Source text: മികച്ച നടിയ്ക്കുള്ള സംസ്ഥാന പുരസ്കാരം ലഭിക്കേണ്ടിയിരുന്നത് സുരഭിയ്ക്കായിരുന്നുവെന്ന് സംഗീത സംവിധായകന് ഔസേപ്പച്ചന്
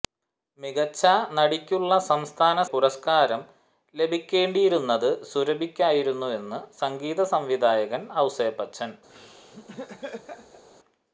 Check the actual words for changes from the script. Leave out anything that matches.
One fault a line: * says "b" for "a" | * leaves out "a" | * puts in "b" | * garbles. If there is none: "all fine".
all fine